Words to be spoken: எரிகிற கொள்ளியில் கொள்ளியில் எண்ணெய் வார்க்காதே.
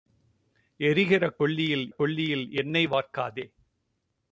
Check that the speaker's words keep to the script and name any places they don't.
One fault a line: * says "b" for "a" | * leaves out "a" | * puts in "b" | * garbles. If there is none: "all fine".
all fine